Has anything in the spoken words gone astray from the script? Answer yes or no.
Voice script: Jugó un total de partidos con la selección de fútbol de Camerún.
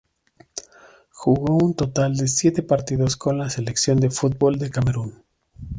yes